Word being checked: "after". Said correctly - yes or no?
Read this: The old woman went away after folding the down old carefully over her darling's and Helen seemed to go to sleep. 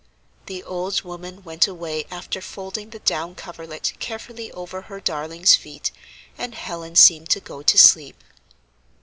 yes